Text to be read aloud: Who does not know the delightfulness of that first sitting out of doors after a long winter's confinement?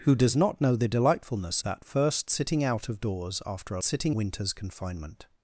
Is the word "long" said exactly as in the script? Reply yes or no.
no